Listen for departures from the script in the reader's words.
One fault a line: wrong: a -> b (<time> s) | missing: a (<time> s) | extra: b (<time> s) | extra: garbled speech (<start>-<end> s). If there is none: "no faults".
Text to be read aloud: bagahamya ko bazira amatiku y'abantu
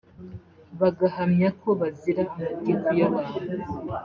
no faults